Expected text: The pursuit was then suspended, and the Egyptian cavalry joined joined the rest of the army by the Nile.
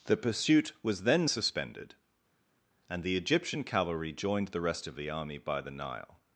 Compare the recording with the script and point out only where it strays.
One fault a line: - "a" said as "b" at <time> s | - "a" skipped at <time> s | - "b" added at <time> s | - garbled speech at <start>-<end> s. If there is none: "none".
- "joined" skipped at 4.5 s